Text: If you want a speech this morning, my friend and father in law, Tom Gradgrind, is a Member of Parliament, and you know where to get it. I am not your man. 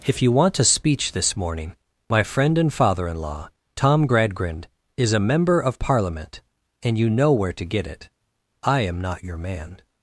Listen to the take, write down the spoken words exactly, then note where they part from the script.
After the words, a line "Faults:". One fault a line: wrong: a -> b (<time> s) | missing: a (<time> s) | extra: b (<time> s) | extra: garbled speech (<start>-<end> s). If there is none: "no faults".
If you want a speech this morning, my friend and father in law, Tom Gradgrind, is a Member of Parliament, and you know where to get it. I am not your man.
Faults:
no faults